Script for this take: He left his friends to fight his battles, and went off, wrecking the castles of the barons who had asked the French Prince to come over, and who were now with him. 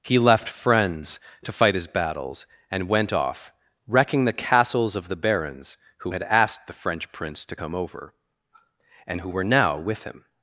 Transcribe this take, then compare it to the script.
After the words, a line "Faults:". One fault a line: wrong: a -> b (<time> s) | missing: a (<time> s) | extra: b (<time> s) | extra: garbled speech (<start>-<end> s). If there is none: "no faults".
He left friends to fight his battles, and went off, wrecking the castles of the barons who had asked the French Prince to come over, and who were now with him.
Faults:
missing: his (0.5 s)